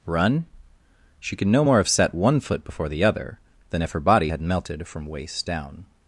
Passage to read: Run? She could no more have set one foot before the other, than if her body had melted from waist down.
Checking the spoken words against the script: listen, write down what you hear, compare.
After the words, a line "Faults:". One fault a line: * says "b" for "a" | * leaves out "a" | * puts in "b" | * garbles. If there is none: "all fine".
Run? She could no more have set one foot before the other, than if her body had melted from waist down.
Faults:
all fine